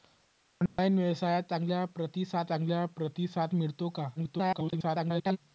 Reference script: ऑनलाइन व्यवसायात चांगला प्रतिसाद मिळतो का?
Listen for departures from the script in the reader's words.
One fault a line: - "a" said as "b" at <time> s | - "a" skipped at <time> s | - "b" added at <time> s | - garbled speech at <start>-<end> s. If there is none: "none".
- "चांगला प्रतिसाद" added at 2.5 s
- garbled speech at 4.2-5.4 s